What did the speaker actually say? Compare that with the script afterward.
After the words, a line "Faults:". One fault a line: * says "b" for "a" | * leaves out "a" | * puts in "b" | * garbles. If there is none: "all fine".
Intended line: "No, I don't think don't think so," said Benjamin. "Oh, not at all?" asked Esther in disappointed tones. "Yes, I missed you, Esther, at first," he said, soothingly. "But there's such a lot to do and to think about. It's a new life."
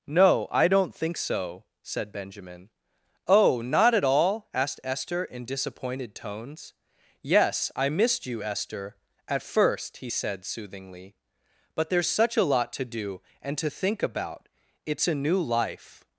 "No, I don't think so," said Benjamin. "Oh, not at all?" asked Esther in disappointed tones. "Yes, I missed you, Esther, at first," he said, soothingly. "But there's such a lot to do and to think about. It's a new life."
Faults:
* leaves out "don't think"